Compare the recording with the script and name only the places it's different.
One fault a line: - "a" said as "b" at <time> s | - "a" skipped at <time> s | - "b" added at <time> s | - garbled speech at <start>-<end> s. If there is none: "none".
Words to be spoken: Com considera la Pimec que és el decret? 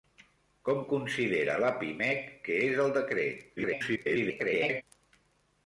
- garbled speech at 3.6-4.8 s